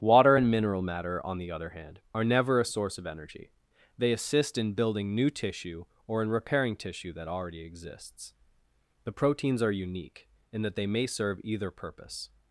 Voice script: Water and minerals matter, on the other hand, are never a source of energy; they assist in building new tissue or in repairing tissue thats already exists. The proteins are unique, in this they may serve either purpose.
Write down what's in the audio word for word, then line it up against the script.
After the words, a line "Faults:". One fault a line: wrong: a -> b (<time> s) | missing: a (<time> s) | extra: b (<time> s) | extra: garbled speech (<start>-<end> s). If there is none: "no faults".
Water and mineral matter, on the other hand, are never a source of energy; they assist in building new tissue or in repairing tissue that already exists. The proteins are unique, in that they may serve either purpose.
Faults:
wrong: minerals -> mineral (0.5 s)
wrong: thats -> that (7.1 s)
wrong: this -> that (10.6 s)